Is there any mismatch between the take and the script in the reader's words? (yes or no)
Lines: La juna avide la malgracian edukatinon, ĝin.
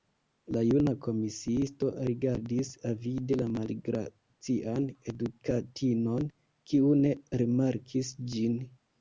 yes